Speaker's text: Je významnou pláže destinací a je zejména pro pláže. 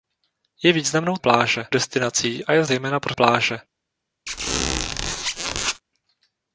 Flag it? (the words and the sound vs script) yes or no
yes